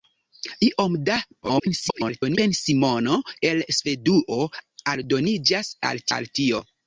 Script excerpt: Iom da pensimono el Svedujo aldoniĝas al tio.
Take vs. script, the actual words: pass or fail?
fail